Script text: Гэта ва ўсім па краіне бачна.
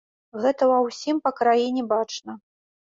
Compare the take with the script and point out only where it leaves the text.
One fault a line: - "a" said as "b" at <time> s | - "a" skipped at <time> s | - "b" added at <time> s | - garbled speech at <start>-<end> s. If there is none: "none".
none